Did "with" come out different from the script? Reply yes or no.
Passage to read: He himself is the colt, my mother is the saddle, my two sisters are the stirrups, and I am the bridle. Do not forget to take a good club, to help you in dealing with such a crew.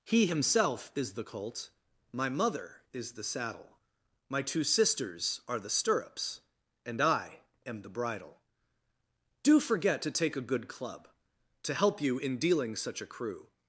yes